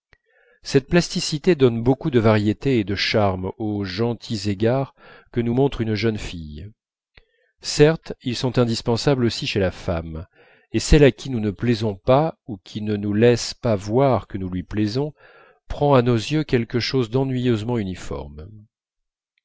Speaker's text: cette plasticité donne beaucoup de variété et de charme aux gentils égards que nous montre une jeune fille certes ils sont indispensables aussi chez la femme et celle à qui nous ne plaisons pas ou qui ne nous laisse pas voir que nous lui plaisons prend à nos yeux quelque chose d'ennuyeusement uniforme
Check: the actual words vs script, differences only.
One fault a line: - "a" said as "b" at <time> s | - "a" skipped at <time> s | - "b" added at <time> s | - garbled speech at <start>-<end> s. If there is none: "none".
none